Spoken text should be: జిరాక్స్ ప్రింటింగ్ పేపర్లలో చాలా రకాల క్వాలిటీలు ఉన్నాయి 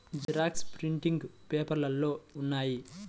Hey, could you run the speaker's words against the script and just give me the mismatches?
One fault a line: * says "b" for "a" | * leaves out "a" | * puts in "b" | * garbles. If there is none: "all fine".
* leaves out "చాలా రకాల క్వాలిటీలు"